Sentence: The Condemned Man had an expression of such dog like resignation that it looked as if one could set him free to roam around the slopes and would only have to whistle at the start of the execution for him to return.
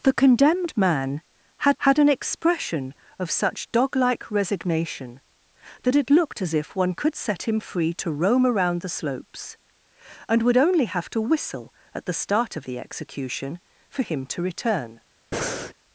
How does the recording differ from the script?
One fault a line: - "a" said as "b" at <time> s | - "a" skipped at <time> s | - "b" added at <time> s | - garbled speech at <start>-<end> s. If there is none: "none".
- "had" added at 1.8 s